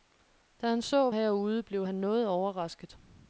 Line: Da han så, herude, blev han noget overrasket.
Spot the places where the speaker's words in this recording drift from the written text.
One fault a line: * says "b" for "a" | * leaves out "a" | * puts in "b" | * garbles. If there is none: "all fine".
all fine